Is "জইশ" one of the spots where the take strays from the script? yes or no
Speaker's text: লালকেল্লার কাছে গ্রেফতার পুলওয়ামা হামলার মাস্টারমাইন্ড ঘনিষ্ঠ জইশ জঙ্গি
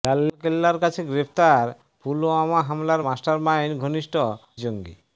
yes